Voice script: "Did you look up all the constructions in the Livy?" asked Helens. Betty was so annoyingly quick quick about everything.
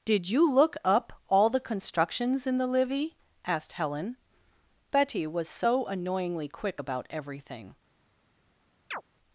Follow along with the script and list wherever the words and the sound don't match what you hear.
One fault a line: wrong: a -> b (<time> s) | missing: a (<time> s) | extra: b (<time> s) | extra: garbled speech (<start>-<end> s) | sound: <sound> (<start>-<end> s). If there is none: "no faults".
wrong: Helens -> Helen (3.7 s)
missing: quick (6.8 s)
sound: chirp (8.9-9.0 s)